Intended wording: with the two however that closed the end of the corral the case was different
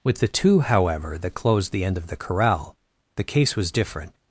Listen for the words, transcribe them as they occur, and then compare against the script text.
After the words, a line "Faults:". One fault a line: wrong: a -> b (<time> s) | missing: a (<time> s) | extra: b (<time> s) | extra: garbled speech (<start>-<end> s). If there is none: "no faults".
with the two however that closed the end of the corral the case was different
Faults:
no faults